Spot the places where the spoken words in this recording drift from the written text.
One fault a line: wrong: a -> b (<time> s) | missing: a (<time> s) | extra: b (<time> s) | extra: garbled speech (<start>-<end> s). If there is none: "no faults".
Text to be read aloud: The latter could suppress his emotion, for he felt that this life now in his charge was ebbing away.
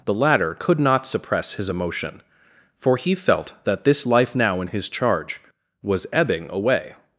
extra: not (0.8 s)